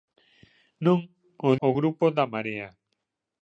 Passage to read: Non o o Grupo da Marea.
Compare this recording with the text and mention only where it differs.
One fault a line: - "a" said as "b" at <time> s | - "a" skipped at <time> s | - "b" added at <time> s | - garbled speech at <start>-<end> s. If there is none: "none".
none